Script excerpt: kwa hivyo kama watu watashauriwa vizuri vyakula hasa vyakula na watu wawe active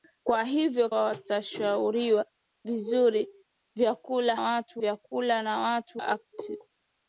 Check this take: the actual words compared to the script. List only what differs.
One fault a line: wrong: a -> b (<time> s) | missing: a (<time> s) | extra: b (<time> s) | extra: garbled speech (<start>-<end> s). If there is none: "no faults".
missing: kama watu (0.9 s)
wrong: hasa -> watu (4.4 s)
missing: wawe (6.0 s)